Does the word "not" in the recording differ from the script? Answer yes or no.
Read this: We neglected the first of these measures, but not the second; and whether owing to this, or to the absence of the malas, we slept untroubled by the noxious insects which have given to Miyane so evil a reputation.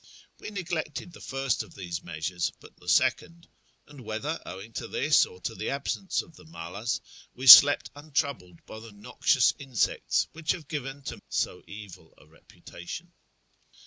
yes